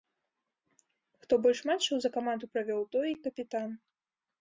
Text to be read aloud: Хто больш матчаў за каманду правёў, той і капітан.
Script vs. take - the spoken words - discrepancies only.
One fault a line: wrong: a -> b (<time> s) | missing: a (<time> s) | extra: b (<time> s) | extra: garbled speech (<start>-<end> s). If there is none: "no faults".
no faults